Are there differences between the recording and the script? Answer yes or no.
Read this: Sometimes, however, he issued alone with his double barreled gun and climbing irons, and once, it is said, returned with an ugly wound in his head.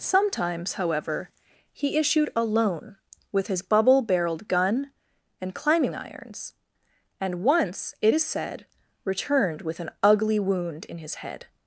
yes